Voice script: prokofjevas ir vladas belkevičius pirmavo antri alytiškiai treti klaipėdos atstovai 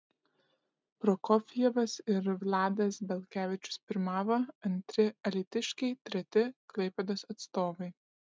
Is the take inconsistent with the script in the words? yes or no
no